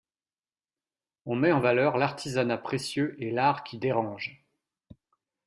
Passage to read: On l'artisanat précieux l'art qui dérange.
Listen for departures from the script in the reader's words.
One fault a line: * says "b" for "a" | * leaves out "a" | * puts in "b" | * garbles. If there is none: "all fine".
* puts in "met en valeur"
* puts in "et"